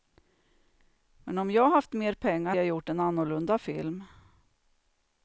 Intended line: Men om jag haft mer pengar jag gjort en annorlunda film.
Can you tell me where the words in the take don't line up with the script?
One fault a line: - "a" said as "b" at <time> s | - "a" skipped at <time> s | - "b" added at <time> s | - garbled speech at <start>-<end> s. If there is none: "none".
none